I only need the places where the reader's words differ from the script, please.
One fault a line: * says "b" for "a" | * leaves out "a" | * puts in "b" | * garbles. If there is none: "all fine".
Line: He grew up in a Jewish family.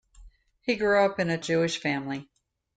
all fine